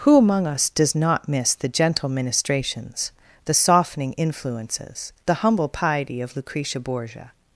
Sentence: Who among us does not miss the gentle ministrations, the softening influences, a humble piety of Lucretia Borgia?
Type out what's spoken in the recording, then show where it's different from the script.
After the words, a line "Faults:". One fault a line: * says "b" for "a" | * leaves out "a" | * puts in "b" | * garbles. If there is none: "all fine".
Who among us does not miss the gentle ministrations, the softening influences, the humble piety of Lucretia Borgia?
Faults:
* says "the" for "a"